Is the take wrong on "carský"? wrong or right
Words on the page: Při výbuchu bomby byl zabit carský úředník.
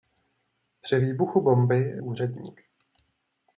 wrong